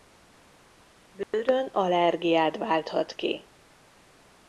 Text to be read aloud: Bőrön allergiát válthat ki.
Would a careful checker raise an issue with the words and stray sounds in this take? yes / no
yes